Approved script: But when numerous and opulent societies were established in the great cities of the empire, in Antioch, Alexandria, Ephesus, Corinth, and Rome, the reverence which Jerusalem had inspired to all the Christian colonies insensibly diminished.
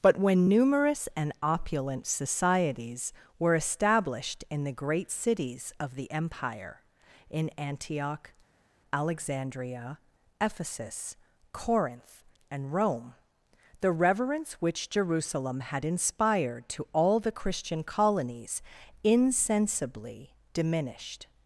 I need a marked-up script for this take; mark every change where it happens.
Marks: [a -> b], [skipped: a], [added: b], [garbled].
But when numerous and opulent societies were established in the great cities of the empire, in Antioch, Alexandria, Ephesus, Corinth, and Rome, the reverence which Jerusalem had inspired to all the Christian colonies insensibly diminished.